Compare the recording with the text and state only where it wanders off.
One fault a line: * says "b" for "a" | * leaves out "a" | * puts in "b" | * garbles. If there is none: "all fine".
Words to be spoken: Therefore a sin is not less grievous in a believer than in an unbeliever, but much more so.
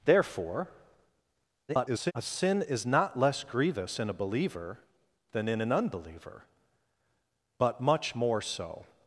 * garbles